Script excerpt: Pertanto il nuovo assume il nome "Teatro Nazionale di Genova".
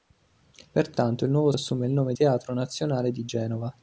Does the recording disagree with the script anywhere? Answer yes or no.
no